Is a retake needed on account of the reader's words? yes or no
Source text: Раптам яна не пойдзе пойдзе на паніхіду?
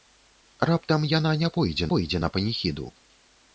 no